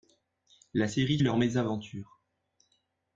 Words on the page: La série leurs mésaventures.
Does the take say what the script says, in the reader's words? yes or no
yes